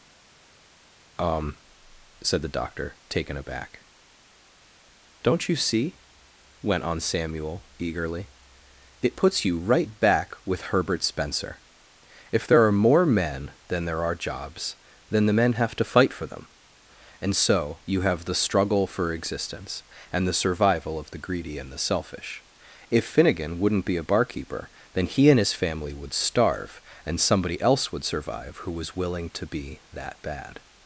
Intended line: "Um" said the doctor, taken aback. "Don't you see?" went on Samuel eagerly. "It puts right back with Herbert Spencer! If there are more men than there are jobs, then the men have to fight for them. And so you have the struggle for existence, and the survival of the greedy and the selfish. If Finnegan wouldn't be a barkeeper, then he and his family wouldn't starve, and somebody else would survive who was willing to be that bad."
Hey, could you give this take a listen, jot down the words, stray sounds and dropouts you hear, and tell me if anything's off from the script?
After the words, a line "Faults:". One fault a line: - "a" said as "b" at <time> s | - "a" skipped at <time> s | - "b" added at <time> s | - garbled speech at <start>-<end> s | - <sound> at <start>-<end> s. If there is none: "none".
"Um" said the doctor, taken aback. "Don't you see?" went on Samuel eagerly. "It puts you right back with Herbert Spencer! If there are more men than there are jobs, then the men have to fight for them. And so you have the struggle for existence, and the survival of the greedy and the selfish. If Finnegan wouldn't be a barkeeper, then he and his family would starve, and somebody else would survive who was willing to be that bad."
Faults:
- "you" added at 9.5 s
- "wouldn't" said as "would" at 25.9 s